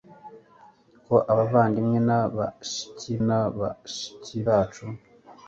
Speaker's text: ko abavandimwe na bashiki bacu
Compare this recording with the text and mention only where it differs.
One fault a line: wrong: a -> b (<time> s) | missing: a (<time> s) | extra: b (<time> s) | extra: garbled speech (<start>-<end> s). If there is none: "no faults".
extra: na bashiki (3.3 s)